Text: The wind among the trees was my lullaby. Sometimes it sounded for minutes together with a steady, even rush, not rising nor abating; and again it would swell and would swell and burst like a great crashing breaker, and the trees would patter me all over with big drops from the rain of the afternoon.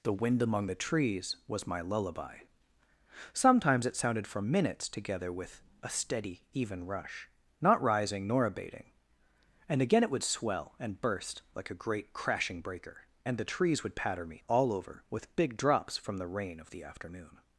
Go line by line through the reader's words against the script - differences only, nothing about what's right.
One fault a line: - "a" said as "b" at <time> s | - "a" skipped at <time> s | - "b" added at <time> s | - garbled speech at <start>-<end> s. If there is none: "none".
- "would swell and" skipped at 11.0 s